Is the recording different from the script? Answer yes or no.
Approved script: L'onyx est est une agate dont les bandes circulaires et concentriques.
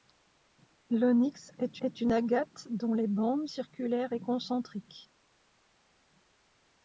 no